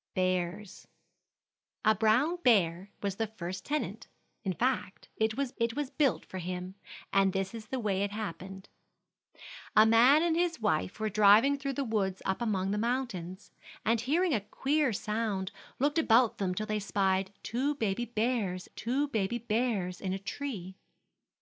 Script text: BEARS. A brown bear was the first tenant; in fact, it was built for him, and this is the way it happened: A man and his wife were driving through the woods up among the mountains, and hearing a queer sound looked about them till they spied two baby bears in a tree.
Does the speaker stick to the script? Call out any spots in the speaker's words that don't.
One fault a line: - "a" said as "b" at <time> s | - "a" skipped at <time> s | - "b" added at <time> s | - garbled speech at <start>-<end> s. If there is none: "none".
- "it was" added at 5.6 s
- "two baby bears" added at 18.7 s